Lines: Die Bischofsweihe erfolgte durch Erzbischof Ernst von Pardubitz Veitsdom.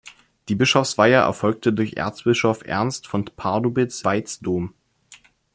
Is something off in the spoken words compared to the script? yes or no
no